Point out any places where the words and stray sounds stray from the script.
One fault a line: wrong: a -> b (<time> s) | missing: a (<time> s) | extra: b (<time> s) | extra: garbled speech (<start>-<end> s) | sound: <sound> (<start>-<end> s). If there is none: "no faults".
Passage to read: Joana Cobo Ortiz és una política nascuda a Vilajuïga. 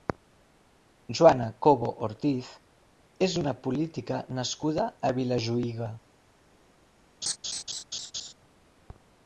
sound: laugh (7.2-8.3 s)